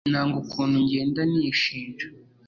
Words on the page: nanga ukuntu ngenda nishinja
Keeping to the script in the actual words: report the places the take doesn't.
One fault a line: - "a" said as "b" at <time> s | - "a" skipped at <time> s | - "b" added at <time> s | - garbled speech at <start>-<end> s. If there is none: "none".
none